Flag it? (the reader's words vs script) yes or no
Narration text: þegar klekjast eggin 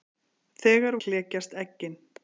no